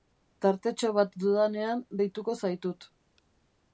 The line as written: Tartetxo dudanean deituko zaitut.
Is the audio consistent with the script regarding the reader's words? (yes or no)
no